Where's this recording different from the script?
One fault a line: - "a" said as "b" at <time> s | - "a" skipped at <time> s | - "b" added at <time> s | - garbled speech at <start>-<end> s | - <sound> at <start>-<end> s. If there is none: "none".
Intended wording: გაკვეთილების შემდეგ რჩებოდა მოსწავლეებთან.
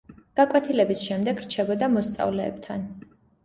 none